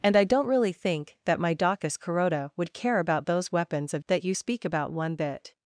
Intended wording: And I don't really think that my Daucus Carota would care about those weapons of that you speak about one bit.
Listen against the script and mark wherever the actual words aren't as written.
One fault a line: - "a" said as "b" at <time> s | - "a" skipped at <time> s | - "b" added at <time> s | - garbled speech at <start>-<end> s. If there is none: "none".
none